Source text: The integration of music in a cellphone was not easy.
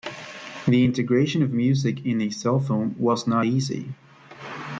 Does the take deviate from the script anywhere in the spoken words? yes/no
no